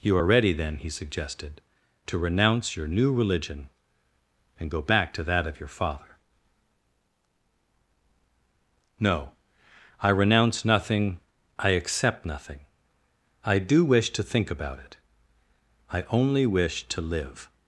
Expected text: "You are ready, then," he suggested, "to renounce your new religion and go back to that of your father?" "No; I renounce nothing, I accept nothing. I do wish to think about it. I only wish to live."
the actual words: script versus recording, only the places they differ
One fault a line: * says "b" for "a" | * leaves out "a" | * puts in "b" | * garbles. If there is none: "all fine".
all fine